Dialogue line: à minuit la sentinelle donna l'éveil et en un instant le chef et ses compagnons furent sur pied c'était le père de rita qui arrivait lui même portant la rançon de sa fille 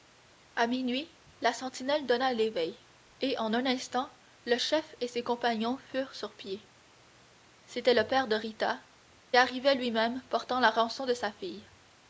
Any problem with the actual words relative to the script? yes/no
yes